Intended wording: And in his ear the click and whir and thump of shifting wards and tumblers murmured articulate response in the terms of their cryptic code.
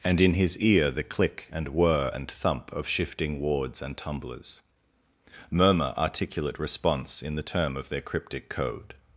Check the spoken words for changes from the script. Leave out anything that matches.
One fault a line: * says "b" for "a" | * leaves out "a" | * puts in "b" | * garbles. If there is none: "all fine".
* says "murmur" for "murmured"
* says "term" for "terms"